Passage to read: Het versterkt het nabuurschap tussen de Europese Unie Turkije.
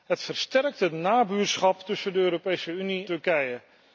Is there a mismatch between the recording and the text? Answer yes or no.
no